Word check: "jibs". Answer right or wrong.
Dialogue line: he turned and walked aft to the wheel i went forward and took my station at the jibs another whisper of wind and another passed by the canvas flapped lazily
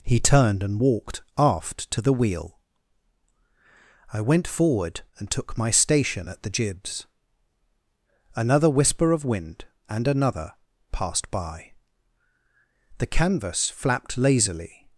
right